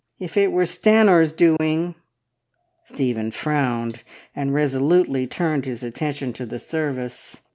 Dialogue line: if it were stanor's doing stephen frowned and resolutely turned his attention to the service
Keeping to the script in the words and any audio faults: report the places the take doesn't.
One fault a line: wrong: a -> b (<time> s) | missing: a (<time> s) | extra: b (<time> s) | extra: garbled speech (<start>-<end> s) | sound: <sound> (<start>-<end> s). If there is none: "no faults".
sound: dropout (1.6-1.6 s)